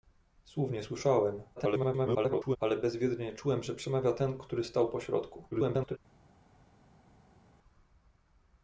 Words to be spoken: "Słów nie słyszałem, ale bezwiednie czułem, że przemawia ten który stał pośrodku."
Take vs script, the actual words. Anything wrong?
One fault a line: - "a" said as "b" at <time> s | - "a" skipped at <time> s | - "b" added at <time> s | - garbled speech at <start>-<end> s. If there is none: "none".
- garbled speech at 1.6-2.6 s
- garbled speech at 5.5-6.0 s